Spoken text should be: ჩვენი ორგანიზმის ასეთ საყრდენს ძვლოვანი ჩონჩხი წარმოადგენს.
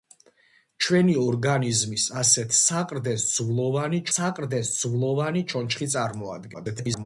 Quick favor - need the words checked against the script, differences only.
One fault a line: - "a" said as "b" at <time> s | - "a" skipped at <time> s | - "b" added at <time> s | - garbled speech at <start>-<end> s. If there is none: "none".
- "საყრდენს ძვლოვანი" added at 4.1 s
- garbled speech at 6.5-7.1 s